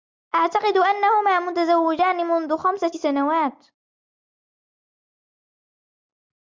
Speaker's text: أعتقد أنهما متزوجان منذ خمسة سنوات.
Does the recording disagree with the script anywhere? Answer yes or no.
no